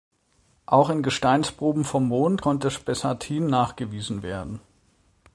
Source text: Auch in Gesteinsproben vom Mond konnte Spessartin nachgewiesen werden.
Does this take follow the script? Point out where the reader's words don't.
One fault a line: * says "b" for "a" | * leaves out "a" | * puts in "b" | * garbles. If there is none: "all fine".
all fine